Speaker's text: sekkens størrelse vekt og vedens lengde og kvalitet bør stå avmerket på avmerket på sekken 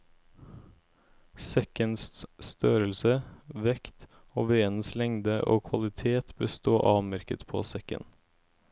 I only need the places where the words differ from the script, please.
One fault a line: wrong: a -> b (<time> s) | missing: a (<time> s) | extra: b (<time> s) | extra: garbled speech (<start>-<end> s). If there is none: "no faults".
missing: avmerket på (7.6 s)